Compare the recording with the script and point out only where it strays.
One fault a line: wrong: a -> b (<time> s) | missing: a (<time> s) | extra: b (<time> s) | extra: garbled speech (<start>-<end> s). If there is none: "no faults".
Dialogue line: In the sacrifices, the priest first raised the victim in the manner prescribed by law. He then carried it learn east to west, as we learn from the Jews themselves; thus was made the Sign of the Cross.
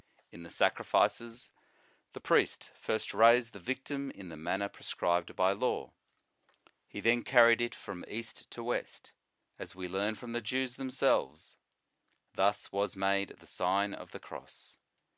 wrong: learn -> from (7.7 s)